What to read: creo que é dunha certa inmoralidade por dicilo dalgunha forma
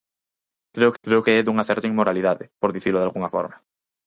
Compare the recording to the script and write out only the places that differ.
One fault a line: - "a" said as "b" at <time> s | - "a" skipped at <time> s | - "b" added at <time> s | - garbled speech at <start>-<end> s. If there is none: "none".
- "creo" added at 1.0 s